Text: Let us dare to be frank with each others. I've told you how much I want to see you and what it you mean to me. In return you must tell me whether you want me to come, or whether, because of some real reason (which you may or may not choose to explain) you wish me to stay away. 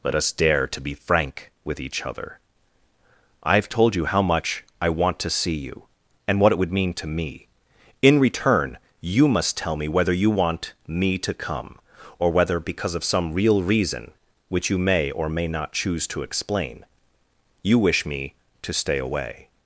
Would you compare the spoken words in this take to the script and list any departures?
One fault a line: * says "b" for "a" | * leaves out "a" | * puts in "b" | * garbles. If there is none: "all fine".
* says "other" for "others"
* says "would" for "you"